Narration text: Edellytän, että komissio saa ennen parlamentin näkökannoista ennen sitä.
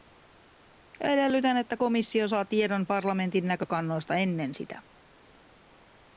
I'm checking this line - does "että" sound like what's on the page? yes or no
yes